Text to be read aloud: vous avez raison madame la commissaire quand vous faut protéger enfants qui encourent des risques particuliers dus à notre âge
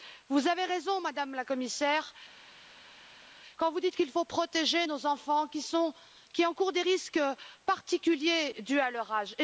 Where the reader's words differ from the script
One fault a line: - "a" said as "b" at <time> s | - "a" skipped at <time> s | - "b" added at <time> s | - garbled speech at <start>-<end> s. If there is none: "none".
- "dites qu'il" added at 3.8 s
- "nos" added at 4.8 s
- "notre" said as "leur" at 8.9 s